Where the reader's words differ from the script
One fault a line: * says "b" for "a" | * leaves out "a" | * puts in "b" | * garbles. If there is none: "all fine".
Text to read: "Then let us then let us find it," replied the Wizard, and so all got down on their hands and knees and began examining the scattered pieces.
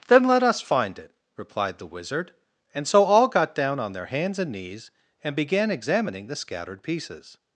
* leaves out "then let us"